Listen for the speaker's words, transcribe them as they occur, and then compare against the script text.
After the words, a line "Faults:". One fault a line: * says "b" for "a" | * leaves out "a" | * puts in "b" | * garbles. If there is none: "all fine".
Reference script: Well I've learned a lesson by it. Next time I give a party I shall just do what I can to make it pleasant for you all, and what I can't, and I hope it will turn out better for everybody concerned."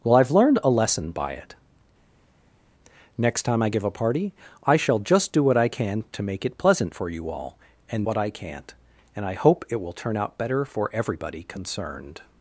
Well I've learned a lesson by it. Next time I give a party I shall just do what I can to make it pleasant for you all, and what I can't, and I hope it will turn out better for everybody concerned."
Faults:
all fine